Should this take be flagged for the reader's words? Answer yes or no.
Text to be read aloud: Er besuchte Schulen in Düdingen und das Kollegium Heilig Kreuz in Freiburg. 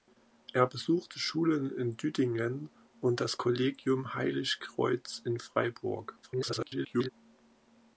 yes